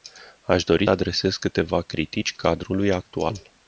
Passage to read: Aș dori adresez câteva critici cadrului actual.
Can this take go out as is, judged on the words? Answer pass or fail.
pass